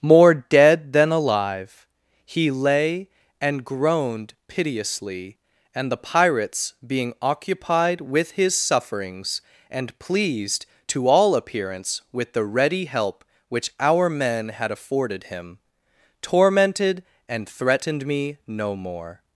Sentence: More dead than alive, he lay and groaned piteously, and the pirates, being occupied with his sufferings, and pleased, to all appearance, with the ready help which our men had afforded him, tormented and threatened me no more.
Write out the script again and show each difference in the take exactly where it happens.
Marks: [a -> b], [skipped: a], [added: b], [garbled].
More dead than alive, he lay and groaned piteously, and the pirates, being occupied with his sufferings, and pleased, to all appearance, with the ready help which our men had afforded him, tormented and threatened me no more.